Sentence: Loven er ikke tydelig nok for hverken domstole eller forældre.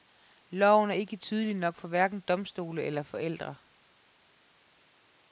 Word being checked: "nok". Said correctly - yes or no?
yes